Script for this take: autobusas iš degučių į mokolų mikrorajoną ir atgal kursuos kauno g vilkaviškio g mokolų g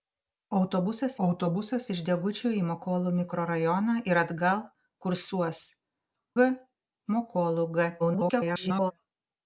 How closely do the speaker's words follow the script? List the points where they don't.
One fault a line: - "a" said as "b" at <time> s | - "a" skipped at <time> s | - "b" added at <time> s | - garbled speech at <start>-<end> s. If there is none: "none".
- "autobusas" added at 1.3 s
- "kauno g vilkaviškio" skipped at 5.6 s
- garbled speech at 8.0-8.9 s